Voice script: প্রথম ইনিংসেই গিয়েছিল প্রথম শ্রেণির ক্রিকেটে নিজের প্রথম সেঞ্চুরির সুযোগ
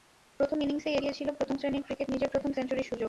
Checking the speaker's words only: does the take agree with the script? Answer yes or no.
yes